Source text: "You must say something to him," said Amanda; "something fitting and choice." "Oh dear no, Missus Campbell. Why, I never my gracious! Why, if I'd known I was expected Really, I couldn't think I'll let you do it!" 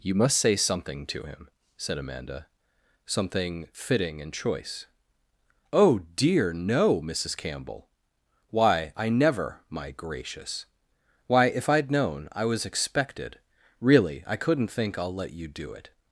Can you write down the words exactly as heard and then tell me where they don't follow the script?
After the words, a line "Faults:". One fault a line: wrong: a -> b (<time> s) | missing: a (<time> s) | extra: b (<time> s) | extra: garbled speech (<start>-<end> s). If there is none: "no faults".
"You must say something to him," said Amanda; "something fitting and choice." "Oh dear no, Missus Campbell. Why, I never my gracious! Why, if I'd known I was expected Really, I couldn't think I'll let you do it!"
Faults:
no faults